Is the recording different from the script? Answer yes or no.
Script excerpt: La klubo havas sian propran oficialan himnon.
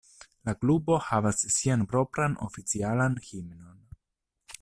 no